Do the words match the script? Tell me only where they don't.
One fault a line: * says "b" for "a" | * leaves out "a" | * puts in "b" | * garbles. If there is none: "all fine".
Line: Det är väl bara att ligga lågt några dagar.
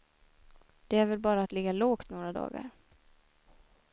all fine